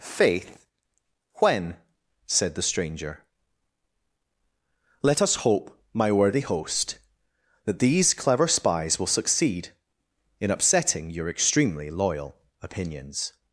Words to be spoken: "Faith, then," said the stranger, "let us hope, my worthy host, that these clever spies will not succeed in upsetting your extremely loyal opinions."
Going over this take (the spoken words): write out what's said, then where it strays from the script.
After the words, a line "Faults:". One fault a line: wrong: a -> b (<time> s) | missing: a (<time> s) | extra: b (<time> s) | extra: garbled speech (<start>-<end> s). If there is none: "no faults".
"Faith, when," said the stranger, "let us hope, my worthy host, that these clever spies will succeed in upsetting your extremely loyal opinions."
Faults:
wrong: then -> when (1.4 s)
missing: not (9.1 s)